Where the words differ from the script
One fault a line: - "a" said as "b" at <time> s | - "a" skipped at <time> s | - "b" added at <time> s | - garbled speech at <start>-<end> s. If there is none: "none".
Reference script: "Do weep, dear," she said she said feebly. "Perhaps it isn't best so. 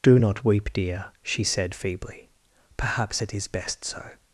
- "not" added at 0.1 s
- "she said" skipped at 1.7 s
- "isn't" said as "is" at 3.3 s